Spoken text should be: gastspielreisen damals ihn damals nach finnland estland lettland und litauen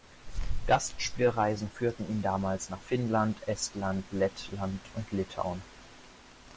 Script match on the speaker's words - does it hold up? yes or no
no